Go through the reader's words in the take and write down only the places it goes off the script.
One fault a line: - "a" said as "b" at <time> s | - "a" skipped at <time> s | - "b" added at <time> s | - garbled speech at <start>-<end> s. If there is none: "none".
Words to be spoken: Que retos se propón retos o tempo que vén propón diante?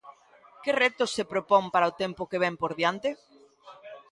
- "retos" said as "para" at 1.7 s
- "propón" said as "por" at 2.6 s